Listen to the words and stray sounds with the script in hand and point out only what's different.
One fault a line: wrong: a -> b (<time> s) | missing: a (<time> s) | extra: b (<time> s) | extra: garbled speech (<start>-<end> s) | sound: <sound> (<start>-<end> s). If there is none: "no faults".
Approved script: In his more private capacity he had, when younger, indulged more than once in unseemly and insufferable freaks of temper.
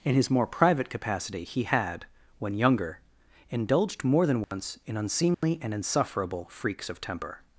sound: dropout (4.4-4.5 s)
sound: dropout (5.3-5.4 s)